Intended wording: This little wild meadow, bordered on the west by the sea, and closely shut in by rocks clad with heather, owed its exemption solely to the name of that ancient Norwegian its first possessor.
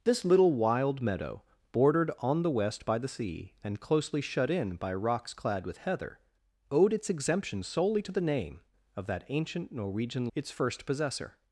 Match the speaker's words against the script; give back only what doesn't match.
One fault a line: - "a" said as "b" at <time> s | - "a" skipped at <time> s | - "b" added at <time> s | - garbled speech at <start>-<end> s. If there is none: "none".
none